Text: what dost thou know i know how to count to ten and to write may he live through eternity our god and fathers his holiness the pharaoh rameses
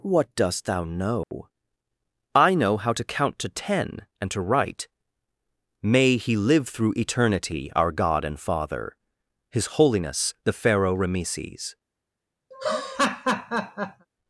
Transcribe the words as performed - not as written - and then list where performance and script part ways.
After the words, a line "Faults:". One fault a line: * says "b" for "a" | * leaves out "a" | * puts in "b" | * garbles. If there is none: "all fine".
what dost thou know i know how to count to ten and to write may he live through eternity our god and father his holiness the pharaoh rameses
Faults:
* says "father" for "fathers"